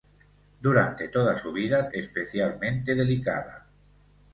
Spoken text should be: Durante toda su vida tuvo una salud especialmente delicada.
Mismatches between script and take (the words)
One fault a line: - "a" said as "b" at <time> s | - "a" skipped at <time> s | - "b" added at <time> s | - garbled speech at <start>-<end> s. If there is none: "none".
- "tuvo una salud" skipped at 1.9 s